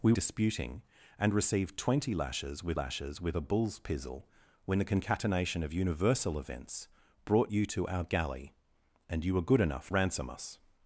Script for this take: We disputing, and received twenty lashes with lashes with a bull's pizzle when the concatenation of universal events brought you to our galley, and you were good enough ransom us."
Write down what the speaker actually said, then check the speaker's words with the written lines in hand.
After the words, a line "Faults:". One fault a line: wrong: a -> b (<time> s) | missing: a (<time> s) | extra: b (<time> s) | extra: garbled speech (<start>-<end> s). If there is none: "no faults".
We disputing, and received twenty lashes with lashes with a bull's pizzle when the concatenation of universal events brought you to our galley, and you were good enough ransom us."
Faults:
no faults